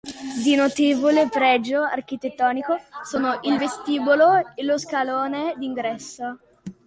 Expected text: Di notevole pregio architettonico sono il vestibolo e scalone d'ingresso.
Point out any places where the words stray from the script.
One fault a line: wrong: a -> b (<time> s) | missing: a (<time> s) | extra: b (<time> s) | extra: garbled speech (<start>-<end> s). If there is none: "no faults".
extra: lo (4.6 s)